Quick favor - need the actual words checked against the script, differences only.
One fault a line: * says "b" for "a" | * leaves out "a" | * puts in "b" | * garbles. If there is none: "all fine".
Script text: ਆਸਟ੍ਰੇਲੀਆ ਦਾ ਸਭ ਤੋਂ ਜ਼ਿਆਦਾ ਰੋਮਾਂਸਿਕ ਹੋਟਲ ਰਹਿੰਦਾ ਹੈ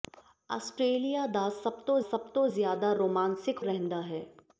* puts in "ਸਭ ਤੋਂ"
* leaves out "ਹੋਟਲ"